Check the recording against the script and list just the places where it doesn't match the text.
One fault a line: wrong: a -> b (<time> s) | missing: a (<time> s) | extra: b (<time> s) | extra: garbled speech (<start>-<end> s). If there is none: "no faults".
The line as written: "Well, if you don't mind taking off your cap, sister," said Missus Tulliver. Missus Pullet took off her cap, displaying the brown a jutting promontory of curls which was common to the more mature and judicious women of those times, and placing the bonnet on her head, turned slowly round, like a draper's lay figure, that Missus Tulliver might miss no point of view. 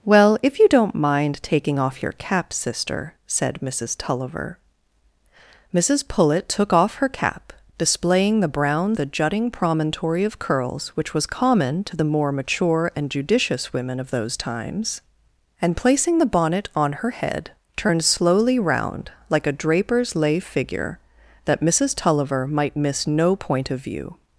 no faults